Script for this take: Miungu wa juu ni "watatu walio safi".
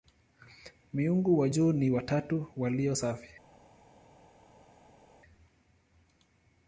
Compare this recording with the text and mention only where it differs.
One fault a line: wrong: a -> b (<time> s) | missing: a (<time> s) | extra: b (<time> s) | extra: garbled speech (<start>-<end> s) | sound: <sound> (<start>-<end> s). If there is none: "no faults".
no faults